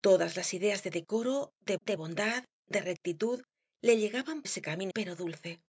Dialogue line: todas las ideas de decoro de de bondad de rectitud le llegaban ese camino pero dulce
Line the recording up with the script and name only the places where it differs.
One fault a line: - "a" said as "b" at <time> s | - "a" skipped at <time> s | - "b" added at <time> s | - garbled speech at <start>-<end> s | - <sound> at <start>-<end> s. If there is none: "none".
none